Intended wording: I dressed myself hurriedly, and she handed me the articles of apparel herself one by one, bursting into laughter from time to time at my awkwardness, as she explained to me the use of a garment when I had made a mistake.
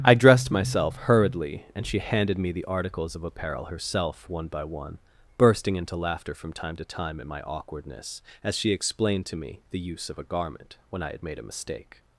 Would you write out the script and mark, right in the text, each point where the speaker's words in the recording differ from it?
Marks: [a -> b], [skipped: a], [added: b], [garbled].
I dressed myself hurriedly, and she handed me the articles of apparel herself one by one, bursting into laughter from time to time at my awkwardness, as she explained to me the use of a garment when I had made a mistake.